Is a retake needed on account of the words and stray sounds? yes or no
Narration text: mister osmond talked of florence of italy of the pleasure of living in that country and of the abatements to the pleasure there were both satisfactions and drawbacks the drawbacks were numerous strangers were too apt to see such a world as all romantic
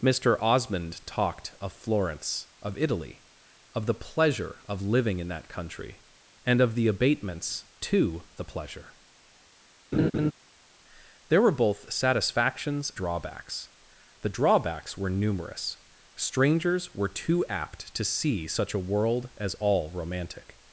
yes